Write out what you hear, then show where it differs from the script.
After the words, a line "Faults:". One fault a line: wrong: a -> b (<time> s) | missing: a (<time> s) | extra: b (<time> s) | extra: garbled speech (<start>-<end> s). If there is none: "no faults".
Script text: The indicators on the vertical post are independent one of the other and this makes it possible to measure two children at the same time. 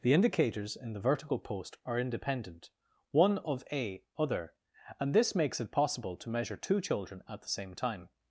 The indicators in the vertical post are independent one of a other and this makes it possible to measure two children at the same time.
Faults:
wrong: on -> in (0.8 s)
wrong: the -> a (3.7 s)